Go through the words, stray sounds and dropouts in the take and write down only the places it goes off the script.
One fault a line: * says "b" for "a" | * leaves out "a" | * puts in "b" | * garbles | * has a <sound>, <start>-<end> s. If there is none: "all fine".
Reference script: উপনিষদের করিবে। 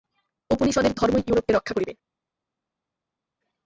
* puts in "ধর্মই ইউরোপকে রক্ষা"